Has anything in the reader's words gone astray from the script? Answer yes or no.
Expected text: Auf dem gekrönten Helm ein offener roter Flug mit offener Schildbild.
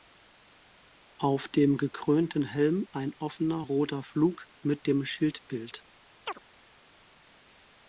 yes